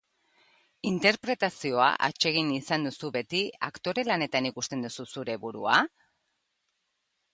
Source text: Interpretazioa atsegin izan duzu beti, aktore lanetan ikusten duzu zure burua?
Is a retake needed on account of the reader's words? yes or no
no